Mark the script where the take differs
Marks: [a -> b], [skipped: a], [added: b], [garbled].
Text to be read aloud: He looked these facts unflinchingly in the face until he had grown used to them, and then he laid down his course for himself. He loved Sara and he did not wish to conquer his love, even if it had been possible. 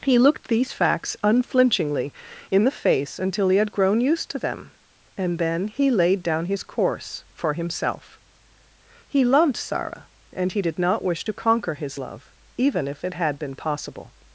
He looked these facts unflinchingly in the face until he had grown used to them, and then he laid down his course for himself. He loved Sara and he did not wish to conquer his love, even if it had been possible.